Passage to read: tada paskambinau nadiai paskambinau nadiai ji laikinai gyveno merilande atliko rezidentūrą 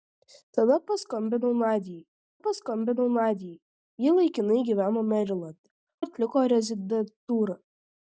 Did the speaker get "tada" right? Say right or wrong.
right